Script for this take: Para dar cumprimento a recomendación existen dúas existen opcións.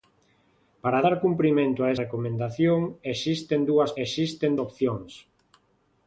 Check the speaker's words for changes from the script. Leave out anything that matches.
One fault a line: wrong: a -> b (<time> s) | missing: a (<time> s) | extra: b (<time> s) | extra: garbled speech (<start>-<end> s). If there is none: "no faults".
no faults